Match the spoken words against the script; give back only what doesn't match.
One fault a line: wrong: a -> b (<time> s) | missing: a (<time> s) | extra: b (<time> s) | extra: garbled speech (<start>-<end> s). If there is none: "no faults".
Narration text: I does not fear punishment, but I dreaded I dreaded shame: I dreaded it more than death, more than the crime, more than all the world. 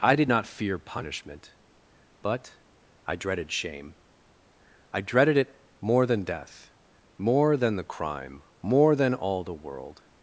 wrong: does -> did (0.1 s)
missing: I dreaded (3.5 s)